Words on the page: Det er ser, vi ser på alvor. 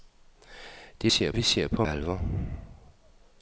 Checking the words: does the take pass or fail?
pass